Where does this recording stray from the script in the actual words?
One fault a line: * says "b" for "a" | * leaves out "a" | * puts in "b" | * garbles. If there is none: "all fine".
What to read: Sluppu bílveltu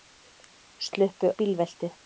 all fine